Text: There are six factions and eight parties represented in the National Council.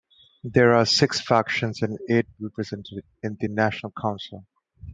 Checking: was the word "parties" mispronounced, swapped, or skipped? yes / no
yes